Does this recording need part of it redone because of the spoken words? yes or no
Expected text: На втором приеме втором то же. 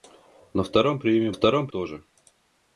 no